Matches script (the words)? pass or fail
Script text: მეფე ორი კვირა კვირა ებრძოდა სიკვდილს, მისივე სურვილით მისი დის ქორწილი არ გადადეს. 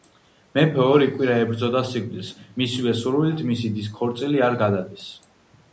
fail